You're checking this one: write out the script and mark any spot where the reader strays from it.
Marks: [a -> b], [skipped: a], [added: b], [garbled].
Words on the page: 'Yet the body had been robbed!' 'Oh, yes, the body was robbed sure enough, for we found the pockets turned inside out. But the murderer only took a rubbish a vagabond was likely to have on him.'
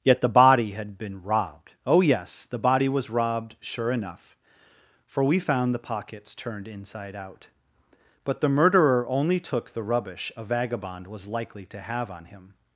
'Yet the body had been robbed!' 'Oh, yes, the body was robbed sure enough, for we found the pockets turned inside out. But the murderer only took [a -> the] rubbish a vagabond was likely to have on him.'